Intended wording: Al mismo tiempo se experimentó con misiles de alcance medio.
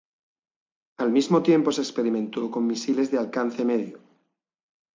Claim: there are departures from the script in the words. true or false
false